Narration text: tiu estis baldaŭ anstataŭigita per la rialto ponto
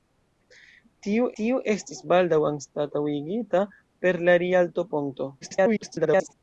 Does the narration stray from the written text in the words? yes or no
yes